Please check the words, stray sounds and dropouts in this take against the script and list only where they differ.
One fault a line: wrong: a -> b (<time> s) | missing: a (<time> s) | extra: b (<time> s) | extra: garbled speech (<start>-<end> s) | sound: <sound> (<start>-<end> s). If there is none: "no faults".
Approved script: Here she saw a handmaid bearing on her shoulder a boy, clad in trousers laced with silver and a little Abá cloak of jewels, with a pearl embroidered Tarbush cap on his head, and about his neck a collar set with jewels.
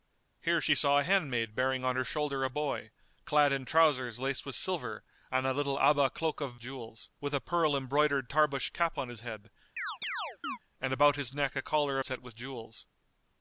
sound: chirp (9.8-10.6 s)